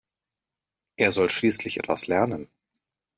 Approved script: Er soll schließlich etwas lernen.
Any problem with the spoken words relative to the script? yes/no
no